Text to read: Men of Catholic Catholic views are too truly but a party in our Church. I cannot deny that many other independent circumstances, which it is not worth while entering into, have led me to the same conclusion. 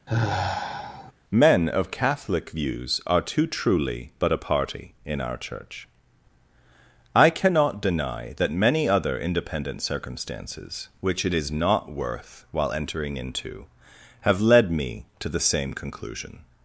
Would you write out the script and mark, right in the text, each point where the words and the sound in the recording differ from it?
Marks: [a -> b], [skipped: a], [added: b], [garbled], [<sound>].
[sigh] Men of Catholic [skipped: Catholic] views are too truly but a party in our Church. I cannot deny that many other independent circumstances, which it is not worth while entering into, have led me to the same conclusion.